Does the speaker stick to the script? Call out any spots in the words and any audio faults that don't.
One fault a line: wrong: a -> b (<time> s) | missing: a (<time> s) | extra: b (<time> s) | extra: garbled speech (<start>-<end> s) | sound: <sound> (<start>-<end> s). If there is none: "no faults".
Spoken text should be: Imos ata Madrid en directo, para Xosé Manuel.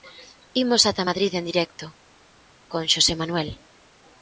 wrong: para -> con (2.7 s)